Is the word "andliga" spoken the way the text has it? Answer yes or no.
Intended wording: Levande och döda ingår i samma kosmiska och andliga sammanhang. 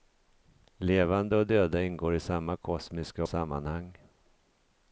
no